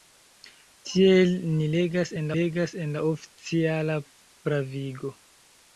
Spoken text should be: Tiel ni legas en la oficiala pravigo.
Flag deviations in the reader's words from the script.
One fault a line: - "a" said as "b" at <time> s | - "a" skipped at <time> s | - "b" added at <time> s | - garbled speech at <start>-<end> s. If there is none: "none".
- "legas en" added at 2.4 s